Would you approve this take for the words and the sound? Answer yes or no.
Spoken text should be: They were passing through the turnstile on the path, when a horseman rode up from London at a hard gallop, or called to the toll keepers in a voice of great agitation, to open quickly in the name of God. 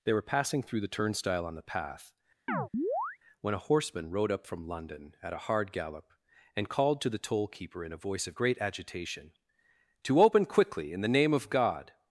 no